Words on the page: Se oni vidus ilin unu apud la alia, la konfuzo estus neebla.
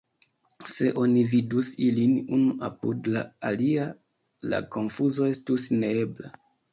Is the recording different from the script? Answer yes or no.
no